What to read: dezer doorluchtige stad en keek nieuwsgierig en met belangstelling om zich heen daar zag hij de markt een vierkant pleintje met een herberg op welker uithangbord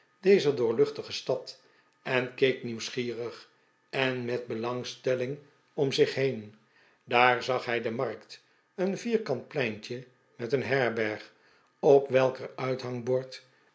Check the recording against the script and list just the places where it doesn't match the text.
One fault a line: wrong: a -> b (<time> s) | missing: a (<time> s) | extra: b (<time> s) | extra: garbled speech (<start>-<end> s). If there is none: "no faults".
no faults